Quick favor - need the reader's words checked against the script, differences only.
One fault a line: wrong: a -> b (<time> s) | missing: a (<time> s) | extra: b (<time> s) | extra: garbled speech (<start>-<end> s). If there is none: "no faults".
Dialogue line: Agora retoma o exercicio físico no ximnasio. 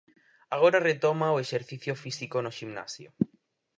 no faults